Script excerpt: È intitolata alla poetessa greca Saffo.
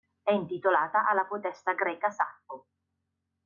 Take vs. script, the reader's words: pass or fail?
pass